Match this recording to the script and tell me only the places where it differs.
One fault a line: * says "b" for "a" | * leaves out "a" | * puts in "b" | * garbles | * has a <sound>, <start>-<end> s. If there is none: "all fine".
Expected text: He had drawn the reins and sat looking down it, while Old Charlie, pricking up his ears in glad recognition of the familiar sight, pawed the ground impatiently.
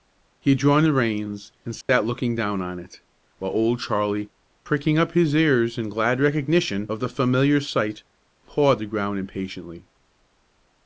* has a dropout, 1.8-1.9 s
* puts in "on"